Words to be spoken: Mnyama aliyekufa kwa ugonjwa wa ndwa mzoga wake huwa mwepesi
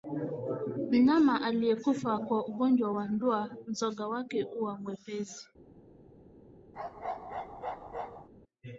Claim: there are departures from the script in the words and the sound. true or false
true